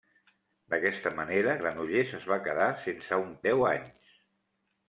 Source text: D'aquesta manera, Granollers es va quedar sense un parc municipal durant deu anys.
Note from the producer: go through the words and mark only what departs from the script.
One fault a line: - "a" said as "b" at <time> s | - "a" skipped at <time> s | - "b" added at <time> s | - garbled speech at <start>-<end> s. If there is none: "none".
- "parc municipal durant" skipped at 3.3 s